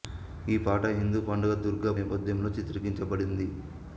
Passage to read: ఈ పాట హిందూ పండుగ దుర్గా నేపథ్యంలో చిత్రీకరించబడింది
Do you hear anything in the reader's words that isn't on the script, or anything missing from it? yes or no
no